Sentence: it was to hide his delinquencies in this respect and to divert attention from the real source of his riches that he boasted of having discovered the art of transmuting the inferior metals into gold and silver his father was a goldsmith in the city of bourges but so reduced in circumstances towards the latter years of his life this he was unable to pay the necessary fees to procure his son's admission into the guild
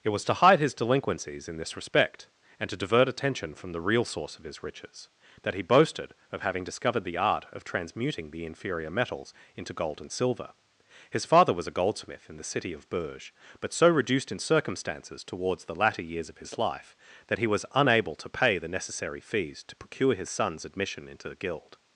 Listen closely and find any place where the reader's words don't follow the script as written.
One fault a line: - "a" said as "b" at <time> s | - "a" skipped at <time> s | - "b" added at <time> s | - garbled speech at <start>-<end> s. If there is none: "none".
- "this" said as "that" at 17.3 s